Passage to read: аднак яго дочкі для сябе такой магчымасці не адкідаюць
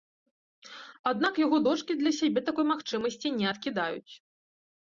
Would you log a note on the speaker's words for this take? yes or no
no